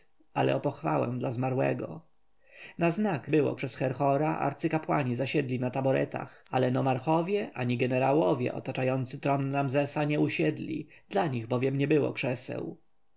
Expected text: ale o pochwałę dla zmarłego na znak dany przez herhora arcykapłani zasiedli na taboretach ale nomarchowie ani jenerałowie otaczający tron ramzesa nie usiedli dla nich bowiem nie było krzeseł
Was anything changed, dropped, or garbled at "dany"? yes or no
yes